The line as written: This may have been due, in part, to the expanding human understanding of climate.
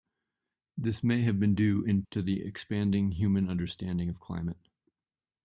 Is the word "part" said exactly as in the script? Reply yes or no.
no